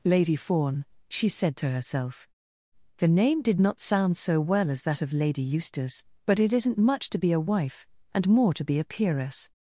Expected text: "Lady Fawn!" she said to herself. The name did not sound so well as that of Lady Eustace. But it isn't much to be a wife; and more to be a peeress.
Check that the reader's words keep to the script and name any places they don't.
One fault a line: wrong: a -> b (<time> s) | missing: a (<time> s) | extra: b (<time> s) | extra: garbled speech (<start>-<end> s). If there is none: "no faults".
no faults